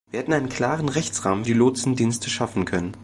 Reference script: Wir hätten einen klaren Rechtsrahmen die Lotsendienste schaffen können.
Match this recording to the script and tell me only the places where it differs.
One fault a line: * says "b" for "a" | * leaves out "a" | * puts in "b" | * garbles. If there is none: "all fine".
all fine